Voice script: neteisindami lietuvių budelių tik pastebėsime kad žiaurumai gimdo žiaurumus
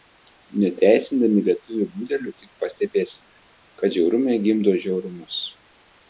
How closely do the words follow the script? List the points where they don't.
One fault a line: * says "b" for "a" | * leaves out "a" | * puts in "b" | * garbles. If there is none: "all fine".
all fine